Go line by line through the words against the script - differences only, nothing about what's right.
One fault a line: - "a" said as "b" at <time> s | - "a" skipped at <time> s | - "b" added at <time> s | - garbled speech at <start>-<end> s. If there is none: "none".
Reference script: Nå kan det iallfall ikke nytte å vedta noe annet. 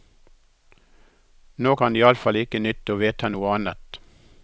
none